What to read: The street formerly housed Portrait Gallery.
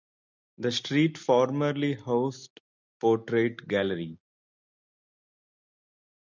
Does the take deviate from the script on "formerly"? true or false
false